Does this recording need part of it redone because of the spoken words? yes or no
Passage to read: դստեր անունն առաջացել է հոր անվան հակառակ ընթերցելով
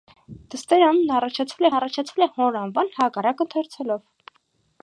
yes